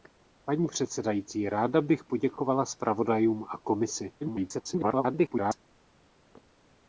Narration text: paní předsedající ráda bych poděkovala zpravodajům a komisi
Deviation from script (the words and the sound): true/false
true